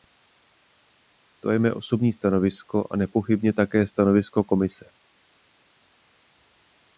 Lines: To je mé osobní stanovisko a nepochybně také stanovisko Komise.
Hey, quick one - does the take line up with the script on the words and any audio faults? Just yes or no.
yes